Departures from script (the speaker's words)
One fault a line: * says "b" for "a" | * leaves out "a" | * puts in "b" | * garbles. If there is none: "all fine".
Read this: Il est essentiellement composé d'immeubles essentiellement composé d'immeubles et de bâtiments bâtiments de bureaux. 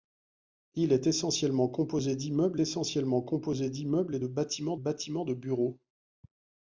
all fine